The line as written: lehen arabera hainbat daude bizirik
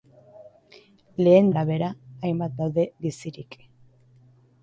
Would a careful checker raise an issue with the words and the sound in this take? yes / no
no